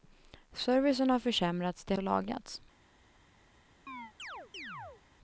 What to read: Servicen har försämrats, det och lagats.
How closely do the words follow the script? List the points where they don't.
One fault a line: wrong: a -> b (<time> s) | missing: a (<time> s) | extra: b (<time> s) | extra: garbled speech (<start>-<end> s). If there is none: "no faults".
no faults